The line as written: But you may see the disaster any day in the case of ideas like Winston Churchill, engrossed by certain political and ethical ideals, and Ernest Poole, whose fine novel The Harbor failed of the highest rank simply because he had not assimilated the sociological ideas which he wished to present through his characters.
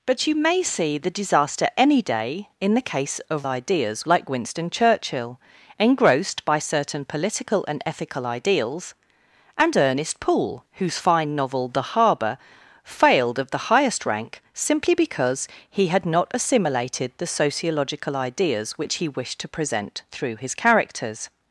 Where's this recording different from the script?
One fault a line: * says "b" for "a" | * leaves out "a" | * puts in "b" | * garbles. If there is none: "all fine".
all fine